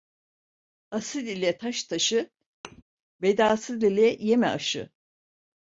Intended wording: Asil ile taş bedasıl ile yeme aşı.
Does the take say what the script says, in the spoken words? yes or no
no